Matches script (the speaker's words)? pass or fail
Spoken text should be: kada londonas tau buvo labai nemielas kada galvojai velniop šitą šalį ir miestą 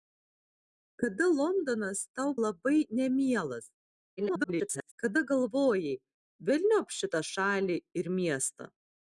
fail